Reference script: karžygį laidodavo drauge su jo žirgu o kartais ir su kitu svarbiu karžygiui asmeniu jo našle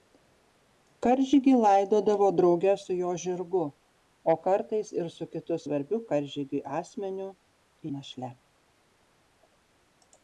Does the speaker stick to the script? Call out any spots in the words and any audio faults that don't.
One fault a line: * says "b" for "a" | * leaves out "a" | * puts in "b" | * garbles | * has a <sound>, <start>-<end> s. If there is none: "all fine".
* leaves out "jo"